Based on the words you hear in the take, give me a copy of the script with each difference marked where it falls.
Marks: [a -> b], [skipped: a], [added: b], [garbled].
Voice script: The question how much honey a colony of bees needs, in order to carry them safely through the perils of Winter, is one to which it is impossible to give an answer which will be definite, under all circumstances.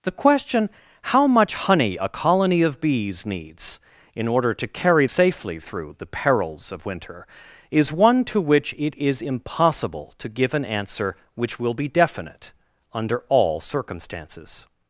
The question how much honey a colony of bees needs, in order to carry [skipped: them] safely through the perils of Winter, is one to which it is impossible to give an answer which will be definite, under all circumstances.